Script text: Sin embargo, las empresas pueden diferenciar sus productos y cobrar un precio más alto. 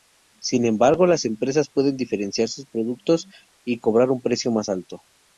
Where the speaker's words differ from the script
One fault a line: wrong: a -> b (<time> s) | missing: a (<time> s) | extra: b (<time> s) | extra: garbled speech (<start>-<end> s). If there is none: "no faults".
no faults